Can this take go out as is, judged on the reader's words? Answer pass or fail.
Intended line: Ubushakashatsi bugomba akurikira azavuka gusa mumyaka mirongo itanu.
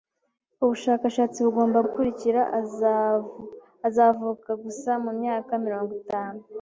pass